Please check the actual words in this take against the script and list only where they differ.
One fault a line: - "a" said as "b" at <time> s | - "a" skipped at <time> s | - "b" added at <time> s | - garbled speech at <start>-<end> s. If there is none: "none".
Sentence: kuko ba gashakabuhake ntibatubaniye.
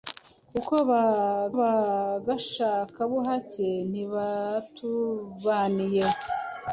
- "ba" added at 1.6 s